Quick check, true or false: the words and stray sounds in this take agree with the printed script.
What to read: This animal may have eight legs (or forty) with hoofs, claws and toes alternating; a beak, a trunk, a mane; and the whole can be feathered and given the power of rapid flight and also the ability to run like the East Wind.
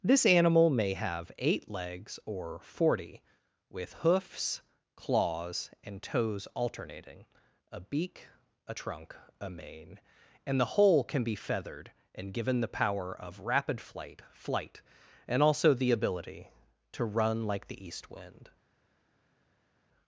false